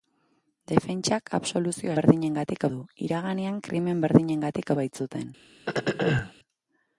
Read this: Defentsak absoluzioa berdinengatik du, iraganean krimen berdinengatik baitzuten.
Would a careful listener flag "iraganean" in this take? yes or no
no